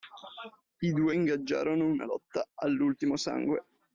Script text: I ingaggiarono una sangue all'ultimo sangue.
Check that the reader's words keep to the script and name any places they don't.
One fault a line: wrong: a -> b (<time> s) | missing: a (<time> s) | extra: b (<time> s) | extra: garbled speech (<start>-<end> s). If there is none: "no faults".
extra: due (0.9 s)
wrong: sangue -> lotta (2.0 s)